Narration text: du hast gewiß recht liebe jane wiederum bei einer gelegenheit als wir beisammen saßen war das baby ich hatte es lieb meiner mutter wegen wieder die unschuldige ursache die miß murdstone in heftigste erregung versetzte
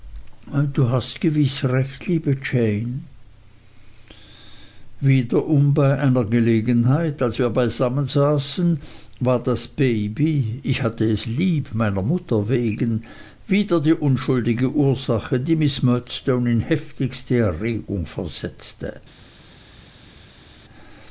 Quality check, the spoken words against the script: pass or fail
pass